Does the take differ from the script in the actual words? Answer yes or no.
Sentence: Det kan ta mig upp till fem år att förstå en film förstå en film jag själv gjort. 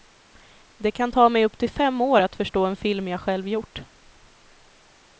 yes